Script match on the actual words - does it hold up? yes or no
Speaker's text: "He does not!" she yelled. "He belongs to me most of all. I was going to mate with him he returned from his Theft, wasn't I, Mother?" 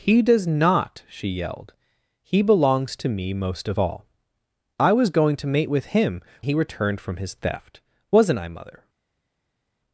yes